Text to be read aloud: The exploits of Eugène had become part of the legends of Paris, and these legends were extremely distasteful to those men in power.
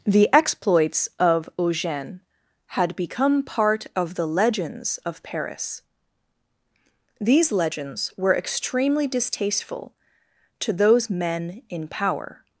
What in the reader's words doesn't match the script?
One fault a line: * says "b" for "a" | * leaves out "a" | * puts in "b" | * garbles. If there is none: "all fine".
* leaves out "and"